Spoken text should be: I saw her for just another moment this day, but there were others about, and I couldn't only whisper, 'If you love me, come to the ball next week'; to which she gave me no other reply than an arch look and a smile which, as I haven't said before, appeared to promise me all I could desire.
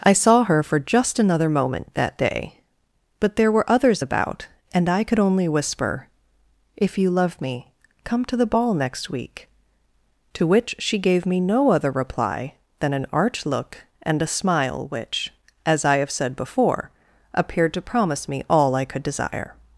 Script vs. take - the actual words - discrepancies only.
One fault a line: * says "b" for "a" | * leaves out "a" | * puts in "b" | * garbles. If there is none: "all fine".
* says "that" for "this"
* says "could" for "couldn't"
* says "have" for "haven't"